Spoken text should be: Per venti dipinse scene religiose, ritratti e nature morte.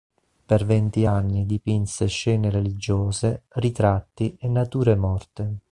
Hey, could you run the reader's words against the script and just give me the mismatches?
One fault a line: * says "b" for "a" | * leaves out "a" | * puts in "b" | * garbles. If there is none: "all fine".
* puts in "anni"